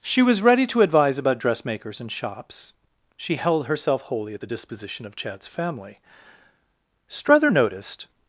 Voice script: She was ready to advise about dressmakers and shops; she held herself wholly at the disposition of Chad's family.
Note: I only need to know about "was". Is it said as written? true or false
true